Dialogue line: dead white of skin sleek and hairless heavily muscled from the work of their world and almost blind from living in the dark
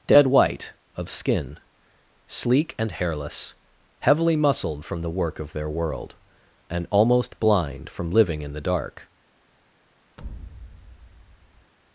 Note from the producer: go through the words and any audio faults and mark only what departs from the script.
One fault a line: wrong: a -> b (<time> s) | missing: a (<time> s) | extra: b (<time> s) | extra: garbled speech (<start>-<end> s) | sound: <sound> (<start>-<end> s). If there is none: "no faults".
sound: thud (10.2-11.7 s)